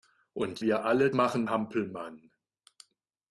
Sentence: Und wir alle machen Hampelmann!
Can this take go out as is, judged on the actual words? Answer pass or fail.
pass